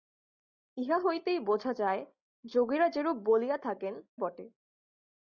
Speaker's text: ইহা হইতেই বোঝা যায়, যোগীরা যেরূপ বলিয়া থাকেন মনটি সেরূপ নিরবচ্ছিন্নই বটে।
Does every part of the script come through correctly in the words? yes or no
no